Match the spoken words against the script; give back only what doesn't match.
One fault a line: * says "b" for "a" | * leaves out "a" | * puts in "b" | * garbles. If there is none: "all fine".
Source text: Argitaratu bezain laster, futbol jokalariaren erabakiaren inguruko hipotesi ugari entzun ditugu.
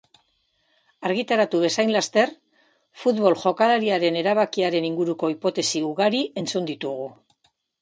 all fine